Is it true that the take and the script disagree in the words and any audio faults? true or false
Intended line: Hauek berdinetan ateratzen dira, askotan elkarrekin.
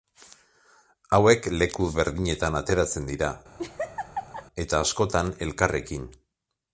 true